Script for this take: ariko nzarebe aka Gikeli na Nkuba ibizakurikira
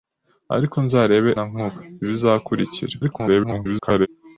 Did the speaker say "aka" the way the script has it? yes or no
no